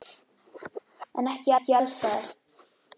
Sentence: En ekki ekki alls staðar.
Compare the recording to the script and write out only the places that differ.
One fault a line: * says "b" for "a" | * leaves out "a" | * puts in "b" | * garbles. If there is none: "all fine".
all fine